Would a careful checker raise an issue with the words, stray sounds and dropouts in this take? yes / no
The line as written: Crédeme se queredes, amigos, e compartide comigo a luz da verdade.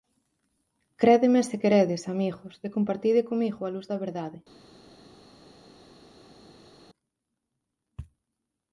no